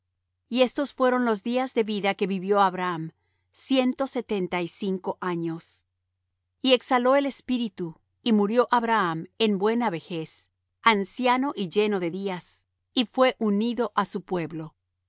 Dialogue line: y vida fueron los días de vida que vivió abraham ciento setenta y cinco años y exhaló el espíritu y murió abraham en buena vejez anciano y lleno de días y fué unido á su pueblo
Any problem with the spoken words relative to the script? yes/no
yes